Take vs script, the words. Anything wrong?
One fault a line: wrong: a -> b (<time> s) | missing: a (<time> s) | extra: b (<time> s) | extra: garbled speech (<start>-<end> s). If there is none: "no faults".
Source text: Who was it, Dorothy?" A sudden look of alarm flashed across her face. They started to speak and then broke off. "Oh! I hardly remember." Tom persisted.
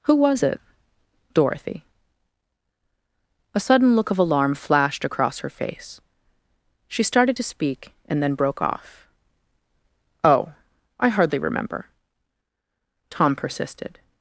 wrong: They -> She (6.9 s)